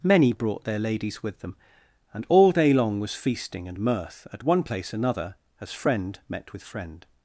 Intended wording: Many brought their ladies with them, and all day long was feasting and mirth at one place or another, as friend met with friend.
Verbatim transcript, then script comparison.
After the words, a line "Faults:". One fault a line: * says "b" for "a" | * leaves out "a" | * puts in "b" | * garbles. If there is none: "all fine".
Many brought their ladies with them, and all day long was feasting and mirth at one place another, as friend met with friend.
Faults:
* leaves out "or"